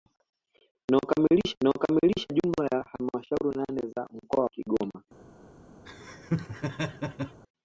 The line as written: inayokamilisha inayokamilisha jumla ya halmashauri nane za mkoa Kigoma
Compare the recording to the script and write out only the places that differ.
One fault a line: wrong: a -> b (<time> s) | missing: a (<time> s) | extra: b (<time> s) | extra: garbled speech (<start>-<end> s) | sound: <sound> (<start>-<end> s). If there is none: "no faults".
sound: laugh (5.9-7.4 s)